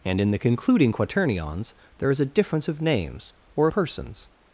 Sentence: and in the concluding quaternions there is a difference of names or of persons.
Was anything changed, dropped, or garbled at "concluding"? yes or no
no